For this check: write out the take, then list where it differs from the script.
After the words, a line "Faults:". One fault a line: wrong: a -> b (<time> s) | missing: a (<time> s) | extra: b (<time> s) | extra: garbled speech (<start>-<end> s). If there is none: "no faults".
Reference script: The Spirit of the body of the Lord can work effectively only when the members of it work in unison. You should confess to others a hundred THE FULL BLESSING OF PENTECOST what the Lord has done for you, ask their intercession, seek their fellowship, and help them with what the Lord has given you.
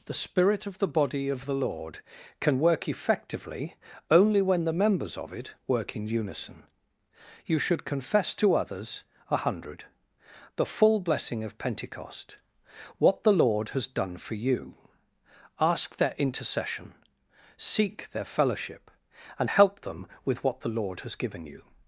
The Spirit of the body of the Lord can work effectively only when the members of it work in unison. You should confess to others a hundred THE FULL BLESSING OF PENTECOST what the Lord has done for you, ask their intercession, seek their fellowship, and help them with what the Lord has given you.
Faults:
no faults